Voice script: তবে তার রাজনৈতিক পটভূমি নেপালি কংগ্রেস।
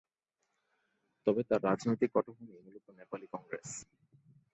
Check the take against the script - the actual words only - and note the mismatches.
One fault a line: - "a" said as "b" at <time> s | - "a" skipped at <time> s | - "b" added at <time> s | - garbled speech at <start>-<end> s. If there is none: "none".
- "মূলত" added at 2.6 s